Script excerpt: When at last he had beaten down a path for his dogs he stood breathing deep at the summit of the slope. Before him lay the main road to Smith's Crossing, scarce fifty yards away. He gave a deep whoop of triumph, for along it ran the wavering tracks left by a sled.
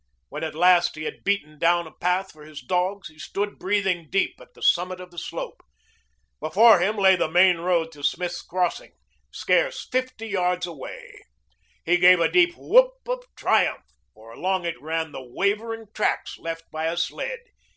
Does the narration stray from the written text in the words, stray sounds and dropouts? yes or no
no